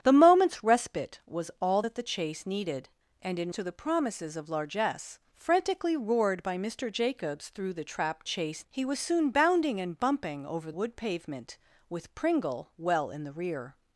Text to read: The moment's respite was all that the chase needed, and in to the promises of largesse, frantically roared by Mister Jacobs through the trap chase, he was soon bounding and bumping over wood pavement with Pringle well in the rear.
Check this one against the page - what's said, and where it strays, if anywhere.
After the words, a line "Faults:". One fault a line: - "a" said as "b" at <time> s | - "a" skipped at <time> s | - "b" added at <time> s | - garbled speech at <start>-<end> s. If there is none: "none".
The moment's respite was all that the chase needed, and in to the promises of largesse, frantically roared by Mister Jacobs through the trap chase, he was soon bounding and bumping over wood pavement with Pringle well in the rear.
Faults:
none